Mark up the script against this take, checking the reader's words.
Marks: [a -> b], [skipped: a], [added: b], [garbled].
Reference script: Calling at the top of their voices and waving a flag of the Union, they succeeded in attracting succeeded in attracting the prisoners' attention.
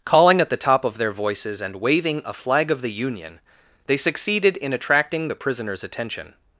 Calling at the top of their voices and waving a flag of the Union, they succeeded in attracting [skipped: succeeded in attracting] the prisoners' attention.